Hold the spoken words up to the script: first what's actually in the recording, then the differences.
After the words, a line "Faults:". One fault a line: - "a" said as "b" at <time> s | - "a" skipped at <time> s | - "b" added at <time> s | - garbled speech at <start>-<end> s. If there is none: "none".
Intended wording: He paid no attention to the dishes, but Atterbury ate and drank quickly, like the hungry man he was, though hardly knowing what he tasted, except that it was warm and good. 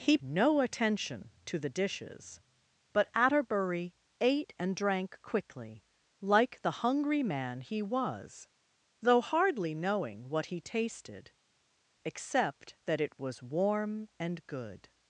He no attention to the dishes, but Atterbury ate and drank quickly, like the hungry man he was, though hardly knowing what he tasted, except that it was warm and good.
Faults:
- "paid" skipped at 0.2 s